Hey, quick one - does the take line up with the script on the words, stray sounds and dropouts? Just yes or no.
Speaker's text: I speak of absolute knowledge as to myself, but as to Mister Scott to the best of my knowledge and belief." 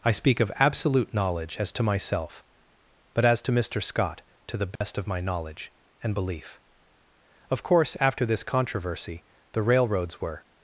no